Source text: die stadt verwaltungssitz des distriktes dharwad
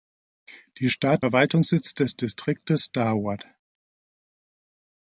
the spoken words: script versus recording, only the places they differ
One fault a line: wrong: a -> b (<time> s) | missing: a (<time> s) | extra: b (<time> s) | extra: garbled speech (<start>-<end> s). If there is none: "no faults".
no faults